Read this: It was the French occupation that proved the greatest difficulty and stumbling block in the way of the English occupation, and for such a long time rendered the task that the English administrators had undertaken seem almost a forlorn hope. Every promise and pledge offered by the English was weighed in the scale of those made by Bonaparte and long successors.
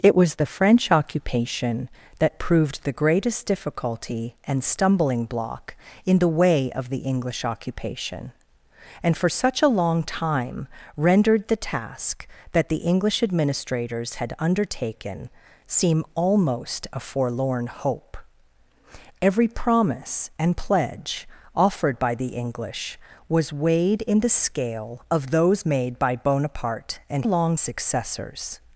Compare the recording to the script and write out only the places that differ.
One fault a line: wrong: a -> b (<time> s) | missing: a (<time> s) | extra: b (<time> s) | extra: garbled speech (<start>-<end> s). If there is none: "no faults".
no faults